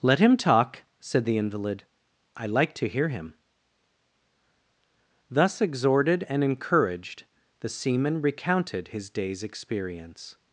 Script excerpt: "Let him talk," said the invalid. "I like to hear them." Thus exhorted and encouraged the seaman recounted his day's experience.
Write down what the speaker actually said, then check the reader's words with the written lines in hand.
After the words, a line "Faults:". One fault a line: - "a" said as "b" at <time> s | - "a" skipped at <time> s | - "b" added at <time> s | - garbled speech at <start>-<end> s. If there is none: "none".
"Let him talk," said the invalid. "I like to hear him." Thus exhorted and encouraged the seaman recounted his day's experience.
Faults:
- "them" said as "him" at 3.1 s